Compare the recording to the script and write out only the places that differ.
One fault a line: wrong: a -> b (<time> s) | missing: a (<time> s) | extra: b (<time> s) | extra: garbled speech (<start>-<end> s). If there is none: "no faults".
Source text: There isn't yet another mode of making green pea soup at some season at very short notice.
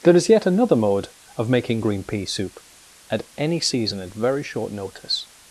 wrong: isn't -> is (0.1 s)
wrong: some -> any (3.4 s)